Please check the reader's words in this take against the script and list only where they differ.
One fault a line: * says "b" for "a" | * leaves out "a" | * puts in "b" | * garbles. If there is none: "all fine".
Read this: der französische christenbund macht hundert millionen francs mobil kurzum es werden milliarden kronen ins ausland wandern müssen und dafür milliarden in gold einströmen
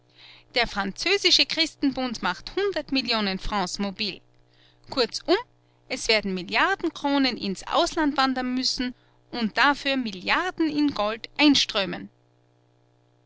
all fine